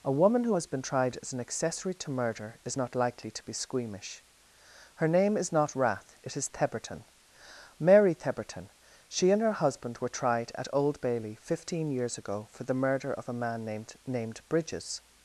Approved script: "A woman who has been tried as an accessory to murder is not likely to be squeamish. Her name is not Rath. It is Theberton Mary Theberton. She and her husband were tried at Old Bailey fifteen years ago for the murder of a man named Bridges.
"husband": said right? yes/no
yes